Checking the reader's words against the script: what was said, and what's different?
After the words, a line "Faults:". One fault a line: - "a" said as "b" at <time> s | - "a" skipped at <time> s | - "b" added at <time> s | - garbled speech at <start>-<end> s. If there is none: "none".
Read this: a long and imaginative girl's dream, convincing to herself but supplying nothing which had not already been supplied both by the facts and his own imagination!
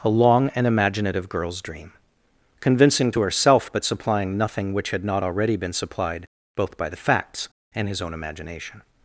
a long and imaginative girl's dream, convincing to herself but supplying nothing which had not already been supplied both by the facts and his own imagination!
Faults:
none